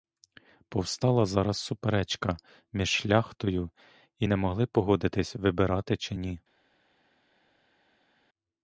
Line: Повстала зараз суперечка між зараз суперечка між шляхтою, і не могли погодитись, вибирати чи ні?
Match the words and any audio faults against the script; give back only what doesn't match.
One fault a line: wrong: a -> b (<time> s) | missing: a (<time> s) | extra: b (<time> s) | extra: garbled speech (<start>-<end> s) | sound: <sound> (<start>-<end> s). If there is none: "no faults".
missing: зараз суперечка між (2.9 s)